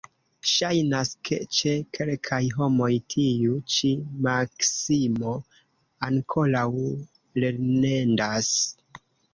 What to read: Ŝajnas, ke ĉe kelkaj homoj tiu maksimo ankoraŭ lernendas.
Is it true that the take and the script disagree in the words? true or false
true